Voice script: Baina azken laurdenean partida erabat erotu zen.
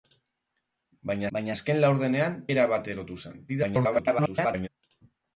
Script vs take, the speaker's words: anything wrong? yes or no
yes